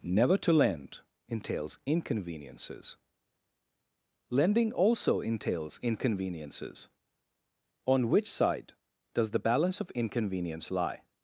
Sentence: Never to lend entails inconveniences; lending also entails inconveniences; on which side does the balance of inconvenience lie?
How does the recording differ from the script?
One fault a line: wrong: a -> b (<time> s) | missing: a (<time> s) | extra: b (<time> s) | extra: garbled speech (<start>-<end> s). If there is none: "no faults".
no faults